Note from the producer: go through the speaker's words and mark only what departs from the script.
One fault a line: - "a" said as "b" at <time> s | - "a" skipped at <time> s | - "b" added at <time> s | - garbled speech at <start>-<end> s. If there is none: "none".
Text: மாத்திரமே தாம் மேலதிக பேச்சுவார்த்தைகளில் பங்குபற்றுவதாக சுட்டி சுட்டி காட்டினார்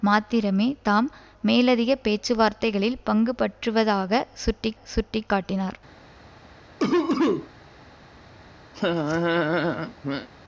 none